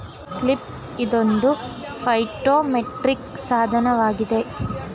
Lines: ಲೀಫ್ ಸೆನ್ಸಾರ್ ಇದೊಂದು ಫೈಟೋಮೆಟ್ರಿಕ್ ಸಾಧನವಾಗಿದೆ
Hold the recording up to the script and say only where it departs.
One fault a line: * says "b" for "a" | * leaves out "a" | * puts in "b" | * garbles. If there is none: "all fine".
* leaves out "ಸೆನ್ಸಾರ್"